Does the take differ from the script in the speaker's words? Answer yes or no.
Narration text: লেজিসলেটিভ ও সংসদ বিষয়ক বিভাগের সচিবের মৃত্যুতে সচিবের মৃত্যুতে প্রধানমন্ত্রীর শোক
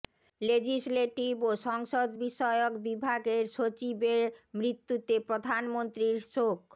yes